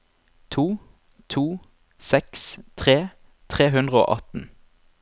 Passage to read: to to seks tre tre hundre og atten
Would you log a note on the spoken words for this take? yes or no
no